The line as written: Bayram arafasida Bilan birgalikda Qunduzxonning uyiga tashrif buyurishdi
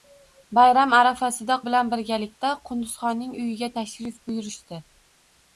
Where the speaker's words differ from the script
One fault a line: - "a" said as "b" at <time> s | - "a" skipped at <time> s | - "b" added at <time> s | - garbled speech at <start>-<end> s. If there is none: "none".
none